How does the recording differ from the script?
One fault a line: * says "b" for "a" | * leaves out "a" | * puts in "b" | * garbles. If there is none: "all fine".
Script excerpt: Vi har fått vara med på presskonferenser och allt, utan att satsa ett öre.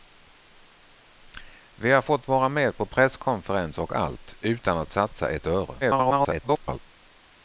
* garbles